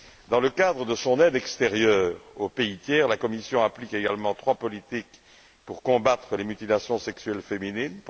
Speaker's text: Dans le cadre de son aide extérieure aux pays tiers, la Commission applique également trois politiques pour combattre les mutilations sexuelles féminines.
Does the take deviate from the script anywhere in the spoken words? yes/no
no